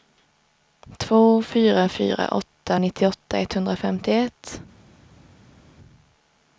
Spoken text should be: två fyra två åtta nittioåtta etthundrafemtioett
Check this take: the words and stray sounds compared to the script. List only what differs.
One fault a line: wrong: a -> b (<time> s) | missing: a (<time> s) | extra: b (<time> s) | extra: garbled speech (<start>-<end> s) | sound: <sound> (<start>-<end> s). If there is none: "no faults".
wrong: två -> fyra (1.9 s)